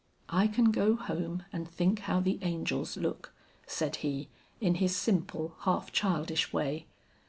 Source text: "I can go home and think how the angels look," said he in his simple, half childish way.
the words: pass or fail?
pass